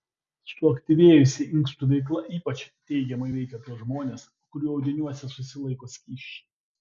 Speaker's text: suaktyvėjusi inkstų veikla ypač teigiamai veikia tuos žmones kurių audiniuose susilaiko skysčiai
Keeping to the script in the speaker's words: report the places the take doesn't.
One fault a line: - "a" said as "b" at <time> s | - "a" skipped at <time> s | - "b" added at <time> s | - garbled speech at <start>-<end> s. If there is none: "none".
none